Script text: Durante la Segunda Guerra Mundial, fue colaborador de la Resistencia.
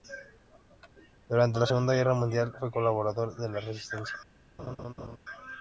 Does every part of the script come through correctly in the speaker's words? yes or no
yes